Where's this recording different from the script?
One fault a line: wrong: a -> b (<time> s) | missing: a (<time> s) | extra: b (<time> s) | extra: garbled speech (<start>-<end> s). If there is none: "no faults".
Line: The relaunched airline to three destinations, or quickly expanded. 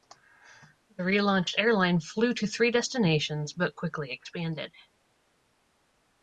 extra: flew (2.0 s)
wrong: or -> but (3.5 s)